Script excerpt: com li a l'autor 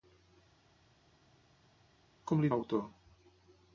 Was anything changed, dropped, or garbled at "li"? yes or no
no